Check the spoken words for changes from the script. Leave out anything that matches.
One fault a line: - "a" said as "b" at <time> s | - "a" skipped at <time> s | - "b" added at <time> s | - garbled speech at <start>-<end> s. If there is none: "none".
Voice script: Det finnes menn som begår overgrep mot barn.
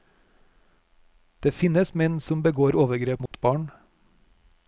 none